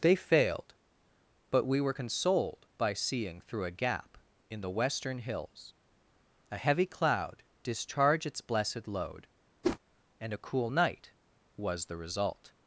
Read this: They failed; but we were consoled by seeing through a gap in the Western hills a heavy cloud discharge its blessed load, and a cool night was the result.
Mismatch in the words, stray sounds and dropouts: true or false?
true